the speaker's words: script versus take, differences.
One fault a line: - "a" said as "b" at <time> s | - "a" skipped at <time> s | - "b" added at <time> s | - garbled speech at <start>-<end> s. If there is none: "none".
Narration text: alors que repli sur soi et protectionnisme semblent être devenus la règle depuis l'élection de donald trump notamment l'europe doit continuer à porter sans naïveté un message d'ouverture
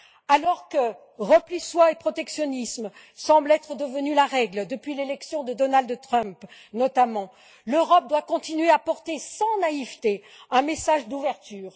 - "sur" skipped at 1.6 s